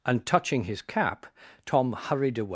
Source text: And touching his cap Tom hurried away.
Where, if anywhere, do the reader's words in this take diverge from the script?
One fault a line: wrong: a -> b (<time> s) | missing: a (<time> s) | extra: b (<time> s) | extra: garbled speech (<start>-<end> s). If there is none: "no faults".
no faults